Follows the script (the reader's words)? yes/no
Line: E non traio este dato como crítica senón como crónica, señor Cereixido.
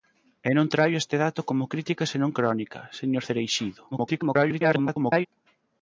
no